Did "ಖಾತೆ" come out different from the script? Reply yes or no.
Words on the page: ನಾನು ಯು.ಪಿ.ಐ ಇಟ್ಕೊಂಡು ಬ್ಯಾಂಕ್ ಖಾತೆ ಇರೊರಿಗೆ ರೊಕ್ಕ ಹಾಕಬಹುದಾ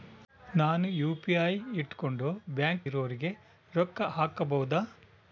yes